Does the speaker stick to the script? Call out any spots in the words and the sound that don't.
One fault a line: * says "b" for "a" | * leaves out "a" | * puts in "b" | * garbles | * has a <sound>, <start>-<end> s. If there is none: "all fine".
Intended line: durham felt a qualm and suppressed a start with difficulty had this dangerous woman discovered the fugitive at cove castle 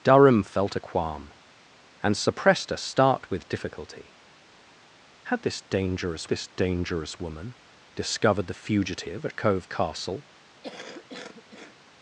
* puts in "this dangerous"
* has a cough, 10.6-11.7 s